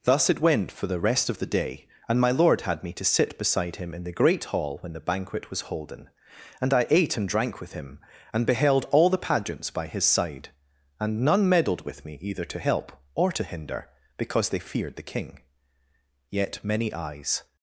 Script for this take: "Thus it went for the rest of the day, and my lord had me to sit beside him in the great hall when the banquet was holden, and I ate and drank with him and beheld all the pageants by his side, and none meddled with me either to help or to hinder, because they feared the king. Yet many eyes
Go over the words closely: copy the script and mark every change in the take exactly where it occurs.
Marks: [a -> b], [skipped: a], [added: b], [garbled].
"Thus it went for the rest of the day, and my lord had me to sit beside him in the great hall when the banquet was holden, and I ate and drank with him and beheld all the pageants by his side, and none meddled with me either to help or to hinder, because they feared the king. Yet many eyes